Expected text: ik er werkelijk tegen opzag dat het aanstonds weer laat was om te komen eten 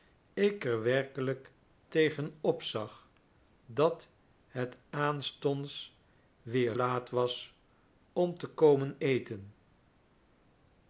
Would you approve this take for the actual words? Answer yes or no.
yes